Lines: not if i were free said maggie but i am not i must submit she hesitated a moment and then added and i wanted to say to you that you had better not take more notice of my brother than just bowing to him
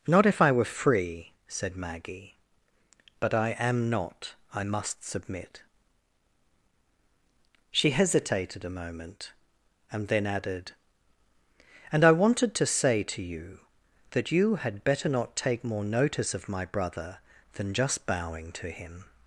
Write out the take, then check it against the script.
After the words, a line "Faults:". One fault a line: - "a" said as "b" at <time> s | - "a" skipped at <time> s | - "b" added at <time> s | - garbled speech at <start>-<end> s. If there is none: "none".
not if i were free said maggie but i am not i must submit she hesitated a moment and then added and i wanted to say to you that you had better not take more notice of my brother than just bowing to him
Faults:
none